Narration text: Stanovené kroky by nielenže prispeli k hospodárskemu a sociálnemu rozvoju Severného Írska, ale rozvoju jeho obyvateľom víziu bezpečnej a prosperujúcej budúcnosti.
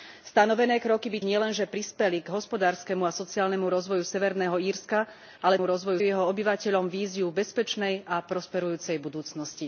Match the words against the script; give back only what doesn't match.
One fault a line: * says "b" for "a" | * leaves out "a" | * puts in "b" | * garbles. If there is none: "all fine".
all fine